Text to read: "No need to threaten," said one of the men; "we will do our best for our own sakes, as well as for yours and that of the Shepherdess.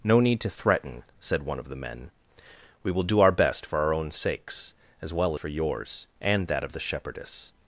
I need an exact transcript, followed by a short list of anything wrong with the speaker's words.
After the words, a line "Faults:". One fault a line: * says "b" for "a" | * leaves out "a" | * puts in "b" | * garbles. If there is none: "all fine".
"No need to threaten," said one of the men; "we will do our best for our own sakes, as well for yours and that of the Shepherdess.
Faults:
* leaves out "as"